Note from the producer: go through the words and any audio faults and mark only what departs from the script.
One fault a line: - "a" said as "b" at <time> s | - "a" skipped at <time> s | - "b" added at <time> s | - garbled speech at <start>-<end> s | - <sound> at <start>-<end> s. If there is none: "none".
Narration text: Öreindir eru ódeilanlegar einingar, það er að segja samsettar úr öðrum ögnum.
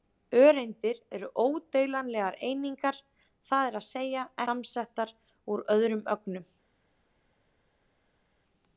none